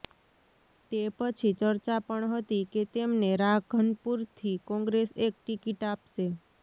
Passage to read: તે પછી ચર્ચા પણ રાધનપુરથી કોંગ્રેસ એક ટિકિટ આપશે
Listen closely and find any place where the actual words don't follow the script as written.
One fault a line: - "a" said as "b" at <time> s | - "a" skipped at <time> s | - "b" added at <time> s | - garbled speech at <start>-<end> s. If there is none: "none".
- "હતી કે તેમને" added at 2.3 s